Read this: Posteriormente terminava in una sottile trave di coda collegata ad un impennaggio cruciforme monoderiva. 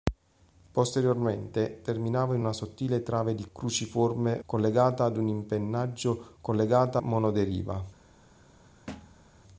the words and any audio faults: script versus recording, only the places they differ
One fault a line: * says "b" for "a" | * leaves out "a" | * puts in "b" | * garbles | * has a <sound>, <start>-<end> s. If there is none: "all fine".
* says "cruciforme" for "coda"
* says "collegata" for "cruciforme"
* has a thud, 8.9-9.3 s